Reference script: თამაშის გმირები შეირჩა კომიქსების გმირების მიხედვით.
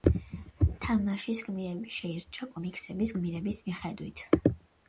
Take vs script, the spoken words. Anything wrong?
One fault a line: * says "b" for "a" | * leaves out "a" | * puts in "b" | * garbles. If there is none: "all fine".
all fine